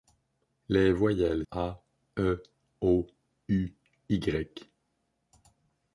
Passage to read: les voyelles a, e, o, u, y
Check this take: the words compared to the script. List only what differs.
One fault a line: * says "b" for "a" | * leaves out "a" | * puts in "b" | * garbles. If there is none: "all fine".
all fine